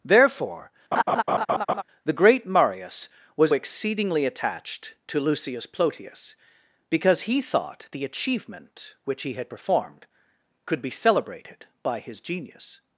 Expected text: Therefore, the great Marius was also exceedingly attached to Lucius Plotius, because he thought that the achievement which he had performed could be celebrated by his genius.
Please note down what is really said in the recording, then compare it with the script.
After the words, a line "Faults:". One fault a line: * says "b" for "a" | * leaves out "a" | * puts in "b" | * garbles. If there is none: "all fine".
Therefore, the great Marius was exceedingly attached to Lucius Plotius, because he thought the achievement which he had performed could be celebrated by his genius.
Faults:
* leaves out "also"
* leaves out "that"